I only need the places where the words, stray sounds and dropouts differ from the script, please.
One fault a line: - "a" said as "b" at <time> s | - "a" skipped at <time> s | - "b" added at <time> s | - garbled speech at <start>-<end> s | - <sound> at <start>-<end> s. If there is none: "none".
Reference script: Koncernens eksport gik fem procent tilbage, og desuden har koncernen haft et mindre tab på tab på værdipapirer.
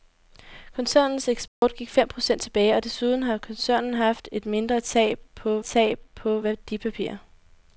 - dropout at 1.5-1.6 s